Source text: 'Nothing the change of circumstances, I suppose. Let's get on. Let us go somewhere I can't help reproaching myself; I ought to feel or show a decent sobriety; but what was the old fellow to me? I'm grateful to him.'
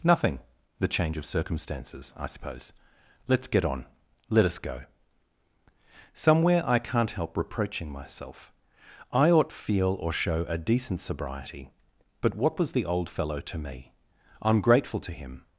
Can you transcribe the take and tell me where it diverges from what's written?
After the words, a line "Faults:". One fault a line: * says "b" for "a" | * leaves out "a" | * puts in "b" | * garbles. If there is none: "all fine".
'Nothing the change of circumstances, I suppose. Let's get on. Let us go somewhere I can't help reproaching myself; I ought feel or show a decent sobriety; but what was the old fellow to me? I'm grateful to him.'
Faults:
* leaves out "to"